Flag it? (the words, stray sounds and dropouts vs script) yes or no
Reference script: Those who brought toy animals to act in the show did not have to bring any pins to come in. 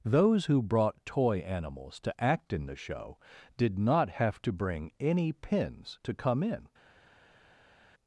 no